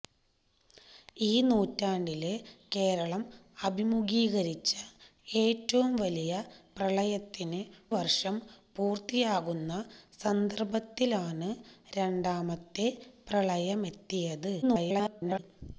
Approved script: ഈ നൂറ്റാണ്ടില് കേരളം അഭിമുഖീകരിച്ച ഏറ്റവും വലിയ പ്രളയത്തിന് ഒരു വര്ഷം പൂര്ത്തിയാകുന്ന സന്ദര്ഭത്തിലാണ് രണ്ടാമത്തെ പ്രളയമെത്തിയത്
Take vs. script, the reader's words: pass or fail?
fail